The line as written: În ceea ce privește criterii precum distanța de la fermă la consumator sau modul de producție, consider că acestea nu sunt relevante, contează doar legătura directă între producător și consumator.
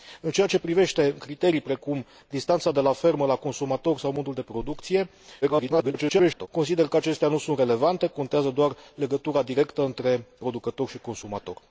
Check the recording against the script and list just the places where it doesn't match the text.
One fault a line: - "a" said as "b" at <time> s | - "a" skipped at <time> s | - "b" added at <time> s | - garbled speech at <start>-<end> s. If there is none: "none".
- garbled speech at 5.4-6.5 s